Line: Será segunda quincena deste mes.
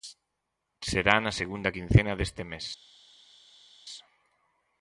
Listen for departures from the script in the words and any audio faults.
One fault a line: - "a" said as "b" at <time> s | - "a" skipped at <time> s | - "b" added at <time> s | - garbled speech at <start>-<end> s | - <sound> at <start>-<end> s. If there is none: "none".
- "na" added at 1.2 s